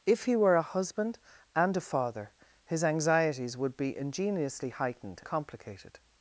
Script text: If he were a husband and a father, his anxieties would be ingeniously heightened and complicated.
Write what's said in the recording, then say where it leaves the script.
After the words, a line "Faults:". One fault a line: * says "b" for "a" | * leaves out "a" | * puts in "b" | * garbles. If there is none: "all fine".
If he were a husband and a father, his anxieties would be ingeniously heightened complicated.
Faults:
* leaves out "and"